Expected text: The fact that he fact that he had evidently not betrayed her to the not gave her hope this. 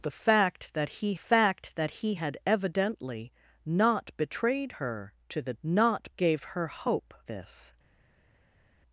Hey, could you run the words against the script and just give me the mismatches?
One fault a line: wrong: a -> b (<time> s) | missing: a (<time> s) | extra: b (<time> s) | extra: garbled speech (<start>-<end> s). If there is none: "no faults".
no faults